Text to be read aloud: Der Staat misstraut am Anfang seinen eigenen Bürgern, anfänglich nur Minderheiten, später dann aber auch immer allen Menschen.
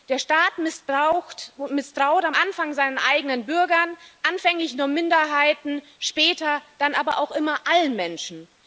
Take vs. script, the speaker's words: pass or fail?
pass